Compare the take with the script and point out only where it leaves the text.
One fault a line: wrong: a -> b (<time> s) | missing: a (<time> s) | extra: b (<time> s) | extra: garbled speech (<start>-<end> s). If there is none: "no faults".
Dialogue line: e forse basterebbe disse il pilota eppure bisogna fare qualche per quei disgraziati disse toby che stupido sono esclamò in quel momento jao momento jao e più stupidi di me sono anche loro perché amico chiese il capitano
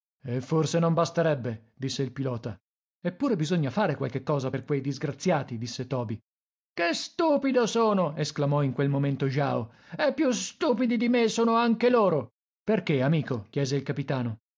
extra: non (0.8 s)
extra: cosa (4.2 s)
missing: momento jao (9.7 s)